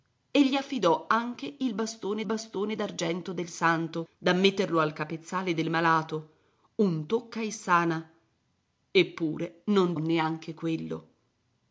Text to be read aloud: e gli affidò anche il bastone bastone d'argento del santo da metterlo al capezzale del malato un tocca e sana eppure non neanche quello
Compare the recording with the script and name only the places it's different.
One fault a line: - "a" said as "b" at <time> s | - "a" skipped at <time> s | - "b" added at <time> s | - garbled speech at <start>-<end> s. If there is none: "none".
none